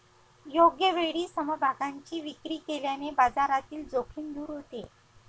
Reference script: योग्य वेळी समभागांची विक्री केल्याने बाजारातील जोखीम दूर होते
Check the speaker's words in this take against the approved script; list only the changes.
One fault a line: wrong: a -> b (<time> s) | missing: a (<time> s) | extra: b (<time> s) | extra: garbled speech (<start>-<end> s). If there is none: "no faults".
no faults